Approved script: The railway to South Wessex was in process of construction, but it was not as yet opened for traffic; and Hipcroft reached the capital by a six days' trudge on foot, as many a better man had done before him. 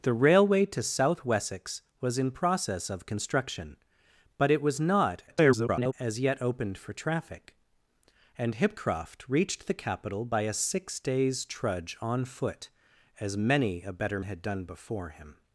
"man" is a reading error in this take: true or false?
true